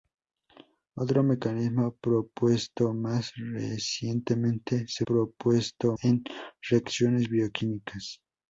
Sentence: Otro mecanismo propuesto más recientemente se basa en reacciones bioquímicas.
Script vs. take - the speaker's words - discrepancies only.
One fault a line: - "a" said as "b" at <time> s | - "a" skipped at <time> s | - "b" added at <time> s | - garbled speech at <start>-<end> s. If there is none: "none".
- "basa" said as "propuesto" at 5.0 s